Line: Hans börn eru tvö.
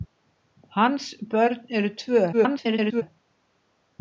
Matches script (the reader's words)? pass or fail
fail